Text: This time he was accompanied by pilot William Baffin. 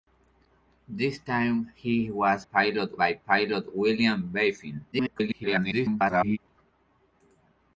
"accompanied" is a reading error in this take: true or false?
true